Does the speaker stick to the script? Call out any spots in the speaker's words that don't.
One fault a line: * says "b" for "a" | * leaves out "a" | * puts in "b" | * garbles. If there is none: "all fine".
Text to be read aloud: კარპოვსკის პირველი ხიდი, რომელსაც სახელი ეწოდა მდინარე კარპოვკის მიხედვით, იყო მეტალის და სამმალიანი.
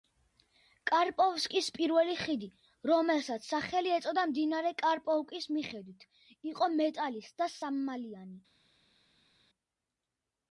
all fine